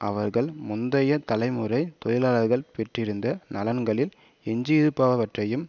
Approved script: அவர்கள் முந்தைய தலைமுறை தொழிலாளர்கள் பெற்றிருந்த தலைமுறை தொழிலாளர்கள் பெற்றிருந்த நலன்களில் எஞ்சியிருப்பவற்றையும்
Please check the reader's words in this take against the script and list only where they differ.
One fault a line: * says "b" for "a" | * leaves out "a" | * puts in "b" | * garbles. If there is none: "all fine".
* leaves out "தலைமுறை தொழிலாளர்கள் பெற்றிருந்த"